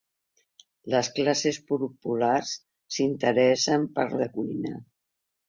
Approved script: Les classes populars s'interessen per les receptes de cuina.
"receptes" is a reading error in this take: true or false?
true